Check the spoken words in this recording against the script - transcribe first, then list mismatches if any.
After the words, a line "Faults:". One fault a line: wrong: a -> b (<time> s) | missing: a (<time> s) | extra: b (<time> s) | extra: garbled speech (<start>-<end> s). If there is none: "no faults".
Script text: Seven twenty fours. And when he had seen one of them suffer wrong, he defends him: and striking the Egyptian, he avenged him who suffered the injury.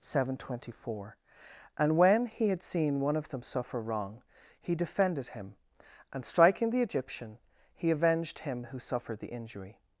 Seven twenty four. And when he had seen one of them suffer wrong, he defended him: and striking the Egyptian, he avenged him who suffered the injury.
Faults:
wrong: fours -> four (0.8 s)
wrong: defends -> defended (4.7 s)